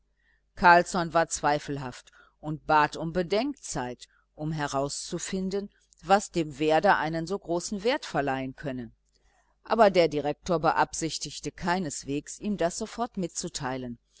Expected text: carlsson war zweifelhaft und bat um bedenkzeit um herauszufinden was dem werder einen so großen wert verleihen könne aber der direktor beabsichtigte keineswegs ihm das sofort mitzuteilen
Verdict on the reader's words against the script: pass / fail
pass